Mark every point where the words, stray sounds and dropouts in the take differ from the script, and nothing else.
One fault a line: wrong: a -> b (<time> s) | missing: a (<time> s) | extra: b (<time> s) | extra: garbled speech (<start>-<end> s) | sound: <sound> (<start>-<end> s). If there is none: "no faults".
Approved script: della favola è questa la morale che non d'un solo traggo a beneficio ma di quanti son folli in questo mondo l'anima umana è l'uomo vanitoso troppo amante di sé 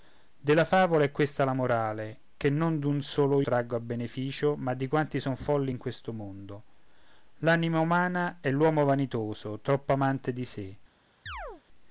sound: chirp (11.3-11.6 s)